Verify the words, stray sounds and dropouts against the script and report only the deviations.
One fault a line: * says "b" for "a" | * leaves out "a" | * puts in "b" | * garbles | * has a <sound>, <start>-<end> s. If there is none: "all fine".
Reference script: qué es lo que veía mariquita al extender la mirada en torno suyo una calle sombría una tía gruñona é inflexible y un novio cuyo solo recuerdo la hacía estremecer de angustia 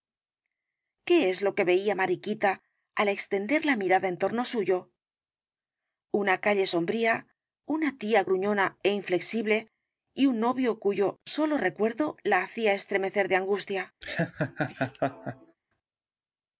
* has a laugh, 14.0-15.6 s